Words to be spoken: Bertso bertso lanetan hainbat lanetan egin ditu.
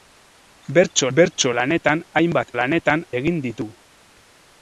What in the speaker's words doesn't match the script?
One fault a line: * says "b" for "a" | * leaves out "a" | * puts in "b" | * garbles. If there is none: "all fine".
all fine